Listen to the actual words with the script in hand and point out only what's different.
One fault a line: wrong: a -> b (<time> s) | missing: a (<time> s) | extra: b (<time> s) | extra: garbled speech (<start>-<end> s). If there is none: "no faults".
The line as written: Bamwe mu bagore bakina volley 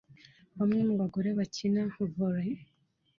no faults